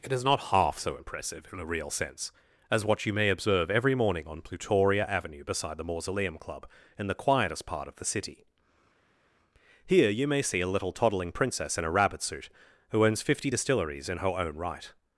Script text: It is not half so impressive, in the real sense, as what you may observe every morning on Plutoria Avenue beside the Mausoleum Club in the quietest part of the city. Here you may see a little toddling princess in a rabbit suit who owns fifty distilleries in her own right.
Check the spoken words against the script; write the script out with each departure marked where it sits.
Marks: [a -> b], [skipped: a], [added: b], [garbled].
It is not half so impressive, in [the -> a] real sense, as what you may observe every morning on Plutoria Avenue beside the Mausoleum Club in the quietest part of the city. Here you may see a little toddling princess in a rabbit suit who owns fifty distilleries in her own right.